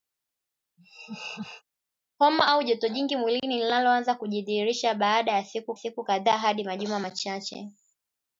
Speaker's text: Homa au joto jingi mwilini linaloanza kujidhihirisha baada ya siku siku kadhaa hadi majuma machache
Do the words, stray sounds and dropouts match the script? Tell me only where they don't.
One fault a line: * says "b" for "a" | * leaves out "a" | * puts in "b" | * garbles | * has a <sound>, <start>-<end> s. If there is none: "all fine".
* has a laugh, 0.8-1.6 s